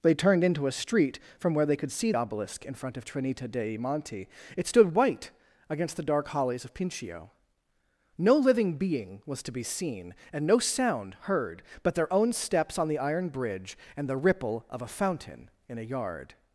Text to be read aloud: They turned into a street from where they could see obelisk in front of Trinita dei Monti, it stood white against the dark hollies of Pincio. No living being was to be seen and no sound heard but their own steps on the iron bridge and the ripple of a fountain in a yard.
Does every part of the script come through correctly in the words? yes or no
yes